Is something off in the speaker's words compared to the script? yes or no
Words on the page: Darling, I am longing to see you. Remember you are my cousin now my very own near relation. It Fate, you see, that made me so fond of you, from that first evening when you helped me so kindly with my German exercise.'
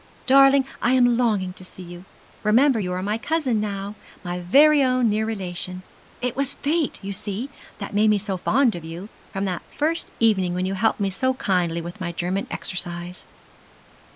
yes